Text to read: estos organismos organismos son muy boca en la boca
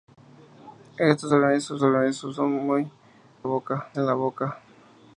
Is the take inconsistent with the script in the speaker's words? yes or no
no